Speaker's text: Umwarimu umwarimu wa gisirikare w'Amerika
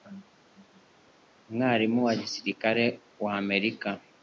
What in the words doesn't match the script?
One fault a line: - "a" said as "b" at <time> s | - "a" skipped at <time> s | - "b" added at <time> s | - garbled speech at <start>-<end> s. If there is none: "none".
- "umwarimu" skipped at 2.0 s